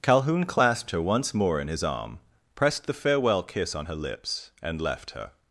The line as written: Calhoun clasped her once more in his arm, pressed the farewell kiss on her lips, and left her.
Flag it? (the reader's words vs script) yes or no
no